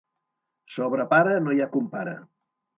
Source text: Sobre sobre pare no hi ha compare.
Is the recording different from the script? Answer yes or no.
yes